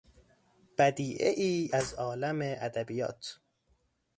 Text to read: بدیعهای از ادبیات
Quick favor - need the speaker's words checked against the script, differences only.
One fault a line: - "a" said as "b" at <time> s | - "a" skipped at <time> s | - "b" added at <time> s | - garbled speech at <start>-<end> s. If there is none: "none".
- "عالم" added at 1.9 s